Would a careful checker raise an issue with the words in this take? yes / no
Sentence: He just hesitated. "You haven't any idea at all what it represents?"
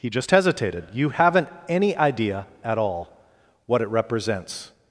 no